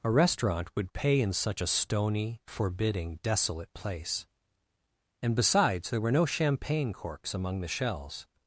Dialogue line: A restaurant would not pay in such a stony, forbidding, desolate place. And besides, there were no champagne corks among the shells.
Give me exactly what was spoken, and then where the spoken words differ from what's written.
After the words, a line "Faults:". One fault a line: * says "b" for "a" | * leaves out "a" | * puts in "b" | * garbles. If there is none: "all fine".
A restaurant would pay in such a stony, forbidding, desolate place. And besides, there were no champagne corks among the shells.
Faults:
* leaves out "not"